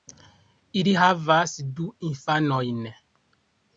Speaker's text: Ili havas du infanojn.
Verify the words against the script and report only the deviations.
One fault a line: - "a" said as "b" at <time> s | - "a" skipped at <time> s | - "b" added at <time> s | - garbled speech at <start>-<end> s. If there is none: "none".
none